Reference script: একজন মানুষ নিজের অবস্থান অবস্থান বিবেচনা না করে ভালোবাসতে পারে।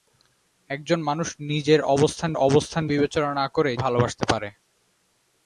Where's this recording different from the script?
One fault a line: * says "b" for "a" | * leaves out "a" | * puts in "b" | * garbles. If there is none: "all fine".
all fine